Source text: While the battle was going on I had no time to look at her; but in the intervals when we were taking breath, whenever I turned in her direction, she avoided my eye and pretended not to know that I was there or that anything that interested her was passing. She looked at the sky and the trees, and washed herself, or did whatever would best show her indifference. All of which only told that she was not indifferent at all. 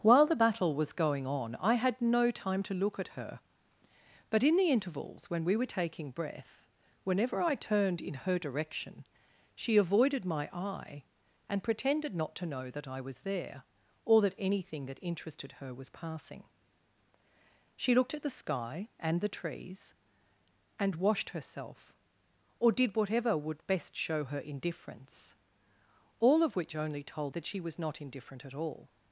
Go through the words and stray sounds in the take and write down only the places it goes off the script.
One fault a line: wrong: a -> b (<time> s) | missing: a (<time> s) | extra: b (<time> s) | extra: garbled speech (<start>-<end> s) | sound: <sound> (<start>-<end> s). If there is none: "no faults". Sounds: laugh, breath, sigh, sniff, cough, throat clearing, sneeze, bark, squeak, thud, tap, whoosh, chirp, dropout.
no faults